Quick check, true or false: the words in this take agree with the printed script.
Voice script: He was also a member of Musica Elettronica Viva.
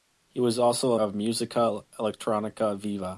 false